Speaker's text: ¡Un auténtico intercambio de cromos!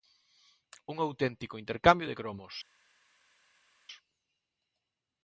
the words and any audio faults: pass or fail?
pass